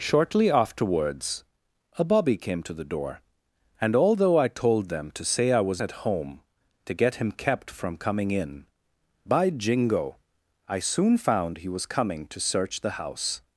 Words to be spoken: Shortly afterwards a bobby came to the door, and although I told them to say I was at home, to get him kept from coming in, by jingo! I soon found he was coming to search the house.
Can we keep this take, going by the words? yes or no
yes